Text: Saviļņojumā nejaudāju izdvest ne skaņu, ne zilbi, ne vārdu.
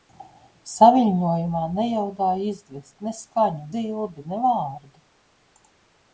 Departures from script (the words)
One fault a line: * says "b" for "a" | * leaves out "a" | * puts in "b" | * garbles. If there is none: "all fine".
* leaves out "ne"